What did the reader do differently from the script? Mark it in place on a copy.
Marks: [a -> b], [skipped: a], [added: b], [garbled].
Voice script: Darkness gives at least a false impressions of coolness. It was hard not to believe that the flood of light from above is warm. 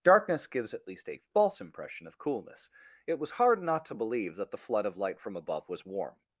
Darkness gives at least a false [impressions -> impression] of coolness. It was hard not to believe that the flood of light from above [is -> was] warm.